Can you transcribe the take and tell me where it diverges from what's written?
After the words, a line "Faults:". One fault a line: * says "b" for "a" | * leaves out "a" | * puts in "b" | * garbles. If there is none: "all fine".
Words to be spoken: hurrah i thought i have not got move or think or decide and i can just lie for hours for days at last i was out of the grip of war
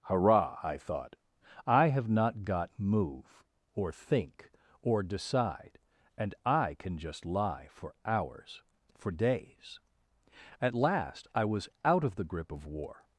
hurrah i thought i have not got move or think or decide and i can just lie for hours for days at last i was out of the grip of war
Faults:
all fine